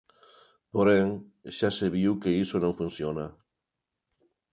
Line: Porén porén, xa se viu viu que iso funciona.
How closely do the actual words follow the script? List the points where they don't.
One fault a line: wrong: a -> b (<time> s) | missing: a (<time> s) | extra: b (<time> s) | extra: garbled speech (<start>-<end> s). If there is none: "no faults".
missing: porén (1.1 s)
missing: viu (2.1 s)
extra: non (2.6 s)